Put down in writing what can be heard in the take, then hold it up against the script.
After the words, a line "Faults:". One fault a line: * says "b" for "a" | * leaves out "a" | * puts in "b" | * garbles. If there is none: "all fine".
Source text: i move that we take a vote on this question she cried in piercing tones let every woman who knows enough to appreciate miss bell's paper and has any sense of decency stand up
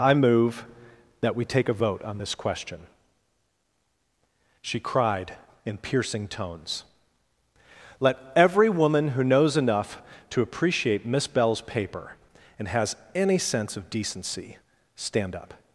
i move that we take a vote on this question she cried in piercing tones let every woman who knows enough to appreciate miss bell's paper and has any sense of decency stand up
Faults:
all fine